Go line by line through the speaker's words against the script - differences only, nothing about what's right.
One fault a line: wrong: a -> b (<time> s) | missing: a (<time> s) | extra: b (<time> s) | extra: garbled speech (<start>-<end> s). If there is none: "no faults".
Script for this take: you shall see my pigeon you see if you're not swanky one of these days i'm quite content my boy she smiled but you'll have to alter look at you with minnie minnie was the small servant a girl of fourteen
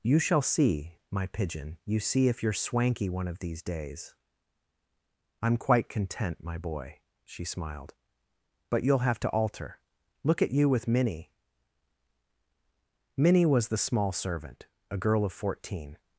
missing: not (2.5 s)